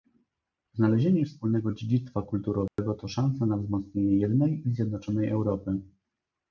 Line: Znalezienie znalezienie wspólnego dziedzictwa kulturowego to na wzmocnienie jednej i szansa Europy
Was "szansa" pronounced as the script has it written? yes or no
no